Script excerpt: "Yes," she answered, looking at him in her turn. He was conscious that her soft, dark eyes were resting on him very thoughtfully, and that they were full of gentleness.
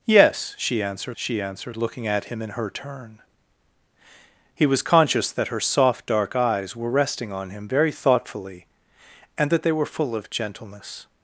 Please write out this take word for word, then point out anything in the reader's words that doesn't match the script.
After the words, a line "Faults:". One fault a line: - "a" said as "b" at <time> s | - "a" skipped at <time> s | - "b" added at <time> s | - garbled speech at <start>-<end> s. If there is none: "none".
"Yes," she answered she answered, looking at him in her turn. He was conscious that her soft, dark eyes were resting on him very thoughtfully, and that they were full of gentleness.
Faults:
- "she answered" added at 1.2 s